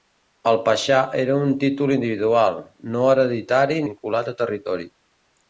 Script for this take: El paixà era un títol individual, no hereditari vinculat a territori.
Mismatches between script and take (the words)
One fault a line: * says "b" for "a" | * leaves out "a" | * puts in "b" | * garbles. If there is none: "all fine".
all fine